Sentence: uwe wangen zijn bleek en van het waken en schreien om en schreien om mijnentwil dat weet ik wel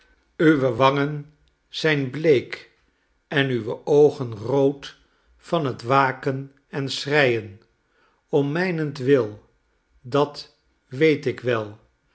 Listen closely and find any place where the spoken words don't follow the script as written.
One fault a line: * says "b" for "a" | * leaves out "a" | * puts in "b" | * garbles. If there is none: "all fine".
* puts in "uwe oogen rood"
* leaves out "en schreien om"